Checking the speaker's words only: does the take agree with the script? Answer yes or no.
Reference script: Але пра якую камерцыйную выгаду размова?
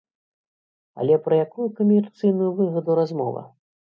yes